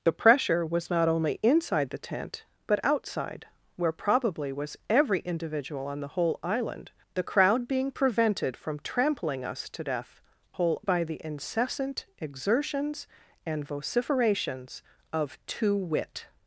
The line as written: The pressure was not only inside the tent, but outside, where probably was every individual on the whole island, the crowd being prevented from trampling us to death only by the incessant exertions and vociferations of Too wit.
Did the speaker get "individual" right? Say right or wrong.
right